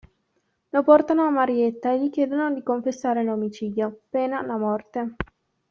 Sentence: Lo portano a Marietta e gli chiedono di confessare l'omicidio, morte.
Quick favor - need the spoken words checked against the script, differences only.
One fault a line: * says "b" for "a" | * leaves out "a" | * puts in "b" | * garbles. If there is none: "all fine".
* puts in "pena la"